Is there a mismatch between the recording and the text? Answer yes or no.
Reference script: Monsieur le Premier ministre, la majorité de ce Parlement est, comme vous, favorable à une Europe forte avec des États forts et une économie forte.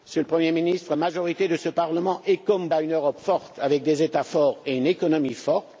yes